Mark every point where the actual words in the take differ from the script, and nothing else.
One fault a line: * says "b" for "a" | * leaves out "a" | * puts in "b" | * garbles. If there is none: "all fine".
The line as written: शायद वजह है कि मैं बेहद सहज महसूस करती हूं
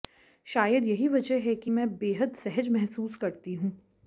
* puts in "यही"